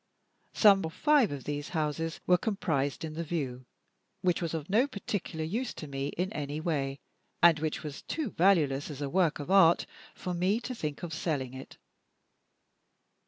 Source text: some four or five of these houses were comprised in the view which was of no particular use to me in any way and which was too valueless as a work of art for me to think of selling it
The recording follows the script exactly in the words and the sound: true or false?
false